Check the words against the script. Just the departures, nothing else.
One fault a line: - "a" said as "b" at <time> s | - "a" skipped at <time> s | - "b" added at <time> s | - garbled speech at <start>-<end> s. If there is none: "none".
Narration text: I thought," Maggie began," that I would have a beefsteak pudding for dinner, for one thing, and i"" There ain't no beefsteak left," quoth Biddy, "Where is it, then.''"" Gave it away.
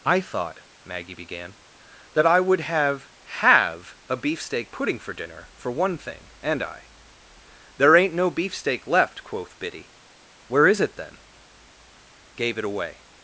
- "have" added at 3.4 s